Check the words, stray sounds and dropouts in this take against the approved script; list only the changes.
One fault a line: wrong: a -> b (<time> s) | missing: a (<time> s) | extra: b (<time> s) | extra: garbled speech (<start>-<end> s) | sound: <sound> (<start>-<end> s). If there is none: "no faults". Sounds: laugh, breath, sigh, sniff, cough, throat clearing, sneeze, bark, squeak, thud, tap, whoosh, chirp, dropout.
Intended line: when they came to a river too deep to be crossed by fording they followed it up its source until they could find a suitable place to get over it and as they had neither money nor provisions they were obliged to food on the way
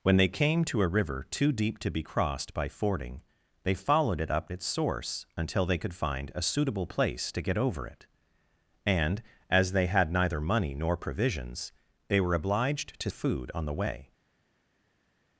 no faults